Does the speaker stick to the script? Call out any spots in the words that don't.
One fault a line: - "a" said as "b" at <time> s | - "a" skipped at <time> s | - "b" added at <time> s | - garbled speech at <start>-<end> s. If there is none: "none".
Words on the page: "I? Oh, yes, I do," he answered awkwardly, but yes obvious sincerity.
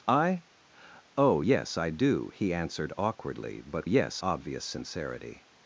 none